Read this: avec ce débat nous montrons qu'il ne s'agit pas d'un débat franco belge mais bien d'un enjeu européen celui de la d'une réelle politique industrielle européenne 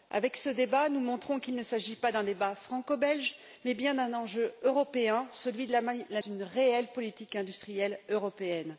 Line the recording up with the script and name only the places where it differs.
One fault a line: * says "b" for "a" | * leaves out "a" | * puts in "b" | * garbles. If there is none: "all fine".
all fine